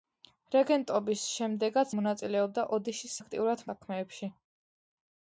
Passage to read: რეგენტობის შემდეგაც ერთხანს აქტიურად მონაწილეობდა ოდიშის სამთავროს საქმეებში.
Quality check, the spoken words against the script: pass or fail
fail